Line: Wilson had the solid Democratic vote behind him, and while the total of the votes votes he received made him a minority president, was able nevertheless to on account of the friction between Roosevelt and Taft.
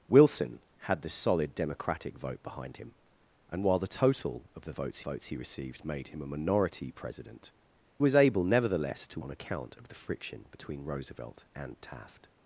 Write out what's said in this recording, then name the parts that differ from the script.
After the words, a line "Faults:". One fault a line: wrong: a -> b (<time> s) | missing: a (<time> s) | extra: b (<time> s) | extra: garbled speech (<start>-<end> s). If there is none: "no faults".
Wilson had the solid Democratic vote behind him, and while the total of the votes votes he received made him a minority president, was able nevertheless to on account of the friction between Roosevelt and Taft.
Faults:
no faults